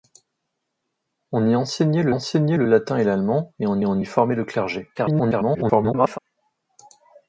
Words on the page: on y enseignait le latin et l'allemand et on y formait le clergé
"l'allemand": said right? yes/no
yes